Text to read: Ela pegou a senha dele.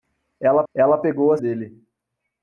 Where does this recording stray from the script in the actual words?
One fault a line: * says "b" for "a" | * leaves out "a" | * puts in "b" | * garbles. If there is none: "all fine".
* puts in "ela"
* leaves out "senha"